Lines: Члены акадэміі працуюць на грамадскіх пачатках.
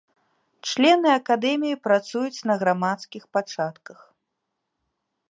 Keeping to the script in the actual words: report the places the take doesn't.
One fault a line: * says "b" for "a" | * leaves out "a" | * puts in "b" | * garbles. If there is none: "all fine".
all fine